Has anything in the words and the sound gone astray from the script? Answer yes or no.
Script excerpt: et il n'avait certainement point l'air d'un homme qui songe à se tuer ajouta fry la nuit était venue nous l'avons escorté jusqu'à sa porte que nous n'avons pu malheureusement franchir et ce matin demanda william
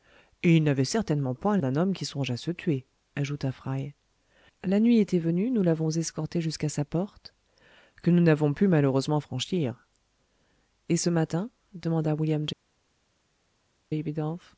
yes